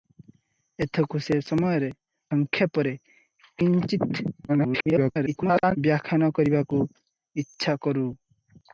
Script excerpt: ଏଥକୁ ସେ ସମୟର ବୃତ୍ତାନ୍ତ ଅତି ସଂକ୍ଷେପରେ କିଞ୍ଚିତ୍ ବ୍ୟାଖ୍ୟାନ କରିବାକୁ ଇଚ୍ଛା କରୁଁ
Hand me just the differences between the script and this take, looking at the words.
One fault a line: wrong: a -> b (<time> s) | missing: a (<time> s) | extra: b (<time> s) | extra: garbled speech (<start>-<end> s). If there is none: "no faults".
missing: ବୃତ୍ତାନ୍ତ ଅତି (1.9 s)
extra: garbled speech (4.5-5.8 s)